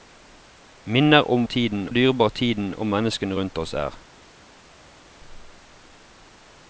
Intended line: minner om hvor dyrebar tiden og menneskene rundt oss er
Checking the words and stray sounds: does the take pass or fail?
fail